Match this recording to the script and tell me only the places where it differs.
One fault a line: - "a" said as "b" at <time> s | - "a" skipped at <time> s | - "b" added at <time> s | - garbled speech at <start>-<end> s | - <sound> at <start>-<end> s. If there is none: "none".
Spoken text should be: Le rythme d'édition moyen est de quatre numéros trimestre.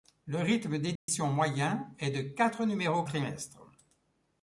- dropout at 1.0-1.1 s